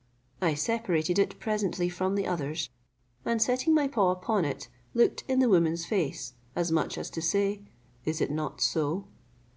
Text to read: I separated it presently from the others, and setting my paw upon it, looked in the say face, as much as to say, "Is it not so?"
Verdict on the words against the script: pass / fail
fail